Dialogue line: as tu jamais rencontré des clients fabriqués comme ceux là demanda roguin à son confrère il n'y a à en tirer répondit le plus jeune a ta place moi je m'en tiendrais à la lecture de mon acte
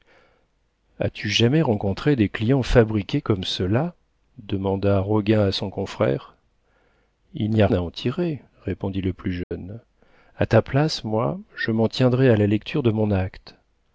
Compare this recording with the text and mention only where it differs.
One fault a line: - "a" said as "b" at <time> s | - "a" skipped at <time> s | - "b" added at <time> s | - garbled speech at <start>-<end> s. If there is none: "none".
none